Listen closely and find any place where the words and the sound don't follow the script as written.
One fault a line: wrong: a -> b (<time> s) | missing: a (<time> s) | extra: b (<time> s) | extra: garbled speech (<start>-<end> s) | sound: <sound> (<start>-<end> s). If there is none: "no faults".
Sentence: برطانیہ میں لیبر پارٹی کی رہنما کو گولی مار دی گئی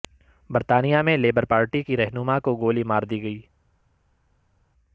no faults